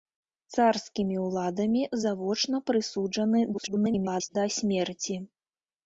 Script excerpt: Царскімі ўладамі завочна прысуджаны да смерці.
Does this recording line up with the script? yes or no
no